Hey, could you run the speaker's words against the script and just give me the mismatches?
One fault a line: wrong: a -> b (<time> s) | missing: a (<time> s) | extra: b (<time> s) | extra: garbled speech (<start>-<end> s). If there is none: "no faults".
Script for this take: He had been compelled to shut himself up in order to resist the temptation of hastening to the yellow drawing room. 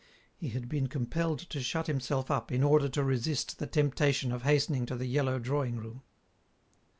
no faults